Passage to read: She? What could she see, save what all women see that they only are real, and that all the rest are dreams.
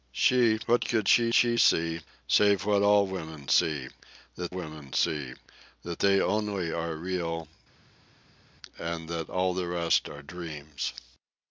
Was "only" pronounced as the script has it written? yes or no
yes